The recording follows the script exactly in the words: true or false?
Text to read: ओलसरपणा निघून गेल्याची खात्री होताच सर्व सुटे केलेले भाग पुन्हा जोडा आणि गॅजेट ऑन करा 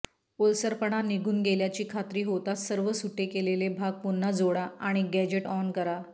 true